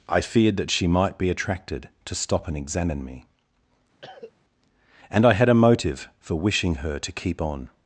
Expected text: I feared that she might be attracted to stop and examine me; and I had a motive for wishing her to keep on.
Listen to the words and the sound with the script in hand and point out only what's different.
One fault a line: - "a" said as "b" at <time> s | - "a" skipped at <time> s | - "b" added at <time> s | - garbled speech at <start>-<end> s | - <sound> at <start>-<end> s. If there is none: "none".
- cough at 4.0-4.3 s